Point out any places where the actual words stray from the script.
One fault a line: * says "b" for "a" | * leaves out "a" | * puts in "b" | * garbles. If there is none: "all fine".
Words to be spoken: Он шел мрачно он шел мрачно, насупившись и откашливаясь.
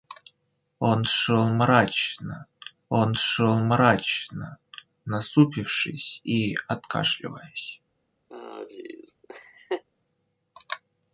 all fine